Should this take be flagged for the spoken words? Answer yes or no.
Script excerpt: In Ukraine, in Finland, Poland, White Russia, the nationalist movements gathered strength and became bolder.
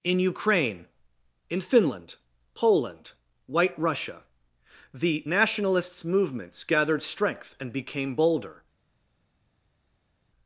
yes